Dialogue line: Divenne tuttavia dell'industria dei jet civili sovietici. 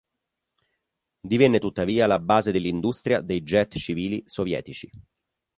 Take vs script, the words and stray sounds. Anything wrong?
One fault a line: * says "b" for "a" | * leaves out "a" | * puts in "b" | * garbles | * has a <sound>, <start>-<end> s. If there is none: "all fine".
* puts in "la base"